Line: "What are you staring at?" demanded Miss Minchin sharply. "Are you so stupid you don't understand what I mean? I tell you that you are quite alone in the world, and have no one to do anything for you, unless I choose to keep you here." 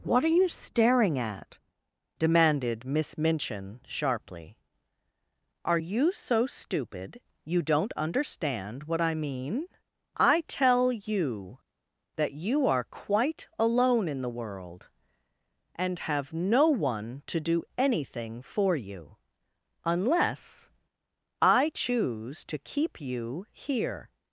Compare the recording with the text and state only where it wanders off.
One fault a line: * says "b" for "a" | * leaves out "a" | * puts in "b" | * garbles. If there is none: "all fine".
all fine